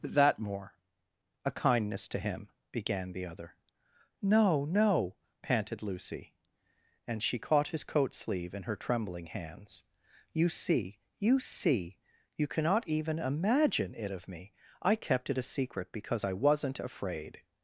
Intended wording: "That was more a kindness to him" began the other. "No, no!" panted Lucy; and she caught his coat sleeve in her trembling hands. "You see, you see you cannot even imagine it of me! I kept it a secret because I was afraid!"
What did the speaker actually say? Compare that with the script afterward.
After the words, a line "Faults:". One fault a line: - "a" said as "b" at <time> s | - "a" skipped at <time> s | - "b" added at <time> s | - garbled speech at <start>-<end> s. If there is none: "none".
"That more a kindness to him" began the other. "No, no!" panted Lucy; and she caught his coat sleeve in her trembling hands. "You see, you see you cannot even imagine it of me! I kept it a secret because I wasn't afraid!"
Faults:
- "was" skipped at 0.4 s
- "was" said as "wasn't" at 16.3 s